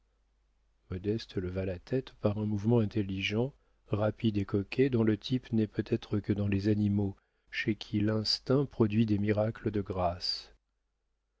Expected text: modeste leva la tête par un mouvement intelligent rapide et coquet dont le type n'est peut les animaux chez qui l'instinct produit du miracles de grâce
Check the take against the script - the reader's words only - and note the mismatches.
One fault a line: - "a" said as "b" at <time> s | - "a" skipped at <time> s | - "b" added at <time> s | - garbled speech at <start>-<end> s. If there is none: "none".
- "être que dans" added at 5.8 s
- "du" said as "des" at 9.1 s